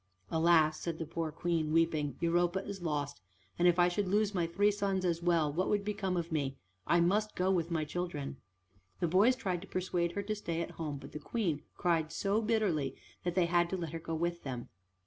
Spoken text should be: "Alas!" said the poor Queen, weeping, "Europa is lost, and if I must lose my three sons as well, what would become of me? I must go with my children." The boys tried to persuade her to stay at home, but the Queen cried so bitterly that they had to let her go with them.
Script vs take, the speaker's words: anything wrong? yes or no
yes